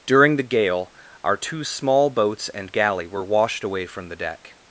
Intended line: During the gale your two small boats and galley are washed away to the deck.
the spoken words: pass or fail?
fail